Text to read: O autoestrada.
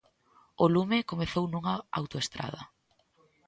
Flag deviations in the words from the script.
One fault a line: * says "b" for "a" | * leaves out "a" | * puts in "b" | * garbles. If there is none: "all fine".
* puts in "lume comezou nunha"